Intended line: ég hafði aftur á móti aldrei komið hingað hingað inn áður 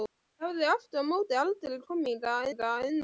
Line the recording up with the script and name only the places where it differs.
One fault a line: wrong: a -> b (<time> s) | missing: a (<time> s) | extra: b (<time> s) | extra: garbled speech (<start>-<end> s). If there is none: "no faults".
no faults